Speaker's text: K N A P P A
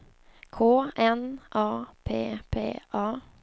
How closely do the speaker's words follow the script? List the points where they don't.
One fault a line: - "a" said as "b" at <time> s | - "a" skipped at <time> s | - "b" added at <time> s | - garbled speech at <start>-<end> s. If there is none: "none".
none